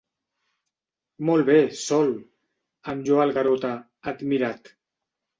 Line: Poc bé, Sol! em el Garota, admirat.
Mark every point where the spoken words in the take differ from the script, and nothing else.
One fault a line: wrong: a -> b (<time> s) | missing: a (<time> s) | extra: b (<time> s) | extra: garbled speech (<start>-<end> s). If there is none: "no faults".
wrong: Poc -> Molt (1.3 s)
extra: lloa (3.1 s)